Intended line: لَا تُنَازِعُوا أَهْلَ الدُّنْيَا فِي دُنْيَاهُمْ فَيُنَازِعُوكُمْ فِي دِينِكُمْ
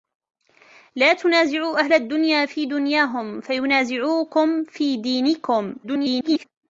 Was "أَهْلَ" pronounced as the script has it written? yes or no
yes